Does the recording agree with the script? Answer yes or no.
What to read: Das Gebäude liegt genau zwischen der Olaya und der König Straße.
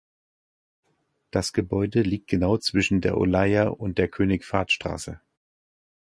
no